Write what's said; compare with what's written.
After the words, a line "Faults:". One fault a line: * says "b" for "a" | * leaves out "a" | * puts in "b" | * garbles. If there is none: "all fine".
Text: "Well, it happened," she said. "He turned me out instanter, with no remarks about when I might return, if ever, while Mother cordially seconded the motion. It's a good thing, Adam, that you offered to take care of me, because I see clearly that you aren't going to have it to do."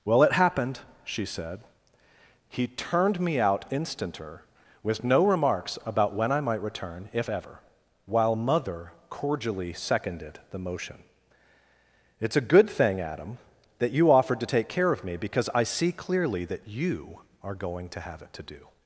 "Well, it happened," she said. "He turned me out instanter, with no remarks about when I might return, if ever, while Mother cordially seconded the motion. It's a good thing, Adam, that you offered to take care of me, because I see clearly that you are going to have it to do."
Faults:
* says "are" for "aren't"